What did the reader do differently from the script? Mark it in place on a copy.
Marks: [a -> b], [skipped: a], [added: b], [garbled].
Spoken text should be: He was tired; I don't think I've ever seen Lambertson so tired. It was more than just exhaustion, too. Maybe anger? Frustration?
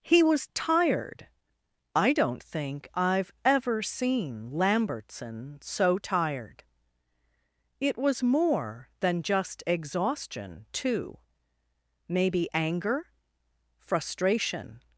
He was tired; I don't think I've ever seen Lambertson so tired. It was more than just exhaustion, too. Maybe anger? Frustration?